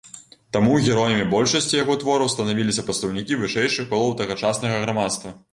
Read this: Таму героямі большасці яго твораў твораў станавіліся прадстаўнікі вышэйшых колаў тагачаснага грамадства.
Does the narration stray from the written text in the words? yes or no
yes